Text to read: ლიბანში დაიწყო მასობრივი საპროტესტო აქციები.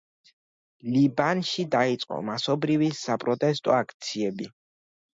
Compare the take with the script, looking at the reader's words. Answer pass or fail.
pass